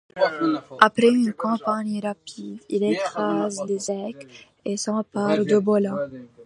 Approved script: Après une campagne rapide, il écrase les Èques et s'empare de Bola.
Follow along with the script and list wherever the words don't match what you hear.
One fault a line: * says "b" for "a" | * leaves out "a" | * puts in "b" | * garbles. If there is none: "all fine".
all fine